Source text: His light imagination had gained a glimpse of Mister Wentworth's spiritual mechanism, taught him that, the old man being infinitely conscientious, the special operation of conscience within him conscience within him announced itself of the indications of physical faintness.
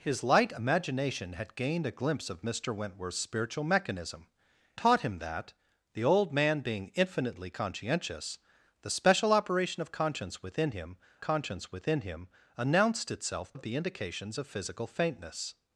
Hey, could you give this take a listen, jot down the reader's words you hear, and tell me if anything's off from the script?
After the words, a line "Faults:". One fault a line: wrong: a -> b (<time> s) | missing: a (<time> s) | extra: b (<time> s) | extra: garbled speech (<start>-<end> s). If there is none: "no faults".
His light imagination had gained a glimpse of Mister Wentworth's spiritual mechanism, taught him that, the old man being infinitely conscientious, the special operation of conscience within him conscience within him announced itself of the indications of physical faintness.
Faults:
no faults